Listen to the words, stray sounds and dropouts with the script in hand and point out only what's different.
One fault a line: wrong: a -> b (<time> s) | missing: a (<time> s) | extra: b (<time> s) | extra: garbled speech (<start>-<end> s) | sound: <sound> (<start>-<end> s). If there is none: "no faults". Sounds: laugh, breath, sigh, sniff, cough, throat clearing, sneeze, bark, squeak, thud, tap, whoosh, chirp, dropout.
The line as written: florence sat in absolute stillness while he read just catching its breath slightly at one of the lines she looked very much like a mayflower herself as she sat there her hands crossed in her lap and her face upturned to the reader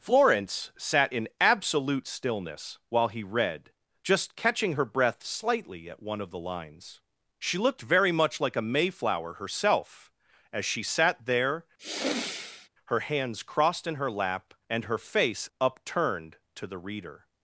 wrong: its -> her (4.7 s)
sound: sigh (11.8-12.7 s)